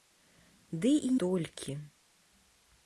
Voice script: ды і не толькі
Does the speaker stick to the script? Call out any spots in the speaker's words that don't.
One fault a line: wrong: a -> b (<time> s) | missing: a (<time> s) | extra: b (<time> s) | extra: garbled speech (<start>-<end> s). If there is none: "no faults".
missing: не (1.1 s)